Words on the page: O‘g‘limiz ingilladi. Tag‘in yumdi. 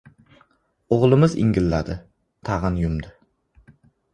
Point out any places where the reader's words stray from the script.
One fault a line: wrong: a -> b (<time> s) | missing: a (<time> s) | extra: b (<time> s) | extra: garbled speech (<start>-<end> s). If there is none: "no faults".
no faults